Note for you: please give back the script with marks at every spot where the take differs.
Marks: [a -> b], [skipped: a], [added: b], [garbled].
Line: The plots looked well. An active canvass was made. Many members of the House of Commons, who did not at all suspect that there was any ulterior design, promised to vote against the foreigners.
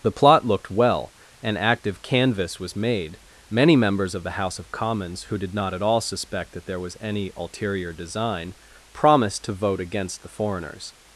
The [plots -> plot] looked well. An active canvass was made. Many members of the House of Commons, who did not at all suspect that there was any ulterior design, promised to vote against the foreigners.